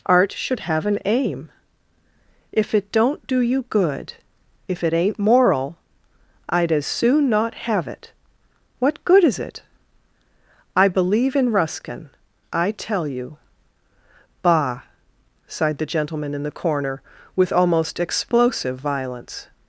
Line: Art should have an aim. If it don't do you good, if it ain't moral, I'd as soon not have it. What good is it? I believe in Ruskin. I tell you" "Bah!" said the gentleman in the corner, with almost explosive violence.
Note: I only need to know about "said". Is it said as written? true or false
false